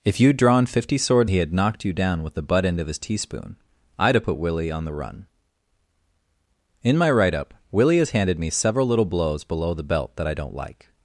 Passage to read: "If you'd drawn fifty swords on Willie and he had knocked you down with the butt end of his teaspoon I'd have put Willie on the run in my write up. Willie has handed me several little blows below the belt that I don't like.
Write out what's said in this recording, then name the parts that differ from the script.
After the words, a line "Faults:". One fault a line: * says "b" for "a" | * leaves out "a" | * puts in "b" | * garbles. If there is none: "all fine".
"If you'd drawn fifty swords he had knocked you down with the butt end of his teaspoon I'd have put Willie on the run in my write up. Willie has handed me several little blows below the belt that I don't like.
Faults:
* leaves out "on Willie and"